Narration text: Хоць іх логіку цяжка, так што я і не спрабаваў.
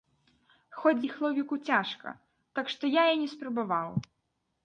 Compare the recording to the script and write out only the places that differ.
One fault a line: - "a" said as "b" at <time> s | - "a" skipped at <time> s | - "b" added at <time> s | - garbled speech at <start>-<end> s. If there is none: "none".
none